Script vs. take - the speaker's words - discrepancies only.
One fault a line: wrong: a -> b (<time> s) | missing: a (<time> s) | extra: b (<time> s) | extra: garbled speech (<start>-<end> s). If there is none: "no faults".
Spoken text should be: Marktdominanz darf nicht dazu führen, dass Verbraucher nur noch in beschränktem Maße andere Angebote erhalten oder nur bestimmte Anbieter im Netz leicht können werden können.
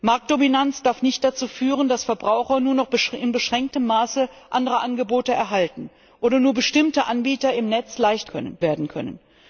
no faults